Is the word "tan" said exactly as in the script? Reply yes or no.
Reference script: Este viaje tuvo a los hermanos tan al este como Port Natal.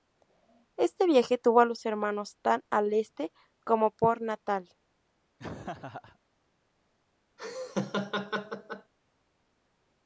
yes